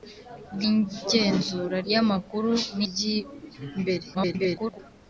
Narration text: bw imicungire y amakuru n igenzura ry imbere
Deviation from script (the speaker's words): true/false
true